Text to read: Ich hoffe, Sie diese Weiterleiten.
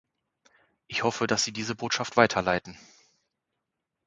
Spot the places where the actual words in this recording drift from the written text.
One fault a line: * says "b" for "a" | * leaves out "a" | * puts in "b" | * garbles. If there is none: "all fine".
* puts in "dass"
* puts in "Botschaft"